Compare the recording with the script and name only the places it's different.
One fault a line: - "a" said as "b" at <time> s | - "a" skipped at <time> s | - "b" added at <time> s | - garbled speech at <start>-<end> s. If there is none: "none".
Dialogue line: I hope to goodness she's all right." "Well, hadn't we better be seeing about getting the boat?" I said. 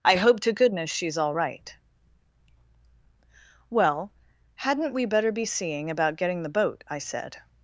none